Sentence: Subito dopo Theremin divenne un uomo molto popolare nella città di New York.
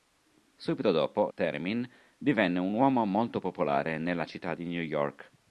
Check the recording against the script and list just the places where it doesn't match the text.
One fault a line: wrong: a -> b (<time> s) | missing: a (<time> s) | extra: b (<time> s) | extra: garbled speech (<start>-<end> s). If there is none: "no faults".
no faults